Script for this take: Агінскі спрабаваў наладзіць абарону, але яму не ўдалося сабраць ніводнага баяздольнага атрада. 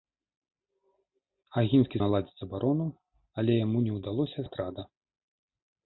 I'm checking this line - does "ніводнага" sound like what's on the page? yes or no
no